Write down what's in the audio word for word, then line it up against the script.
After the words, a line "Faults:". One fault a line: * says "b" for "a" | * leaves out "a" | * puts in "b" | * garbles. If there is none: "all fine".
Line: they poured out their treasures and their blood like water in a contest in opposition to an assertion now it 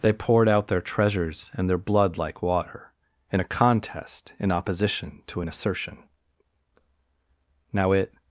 they poured out their treasures and their blood like water in a contest in opposition to an assertion now it
Faults:
all fine